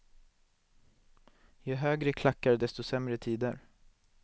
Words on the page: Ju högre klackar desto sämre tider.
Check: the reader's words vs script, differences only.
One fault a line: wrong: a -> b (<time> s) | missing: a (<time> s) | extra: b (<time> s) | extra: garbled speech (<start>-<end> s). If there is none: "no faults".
no faults